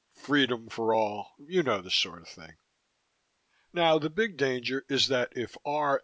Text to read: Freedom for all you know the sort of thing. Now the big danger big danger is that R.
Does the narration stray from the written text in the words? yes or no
yes